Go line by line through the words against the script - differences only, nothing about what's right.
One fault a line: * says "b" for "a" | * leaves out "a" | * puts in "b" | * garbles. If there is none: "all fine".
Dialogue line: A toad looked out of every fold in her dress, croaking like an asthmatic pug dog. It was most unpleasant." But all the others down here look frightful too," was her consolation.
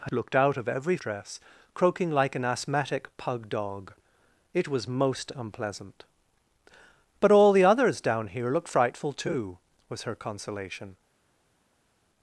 * leaves out "toad"
* leaves out "fold in her"